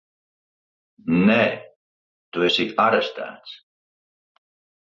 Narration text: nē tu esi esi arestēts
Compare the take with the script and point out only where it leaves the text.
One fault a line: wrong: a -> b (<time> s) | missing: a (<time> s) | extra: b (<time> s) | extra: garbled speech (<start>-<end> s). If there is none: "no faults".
missing: esi (2.7 s)